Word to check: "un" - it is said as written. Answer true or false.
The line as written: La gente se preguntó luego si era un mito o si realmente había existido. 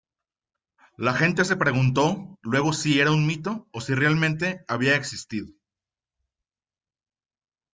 true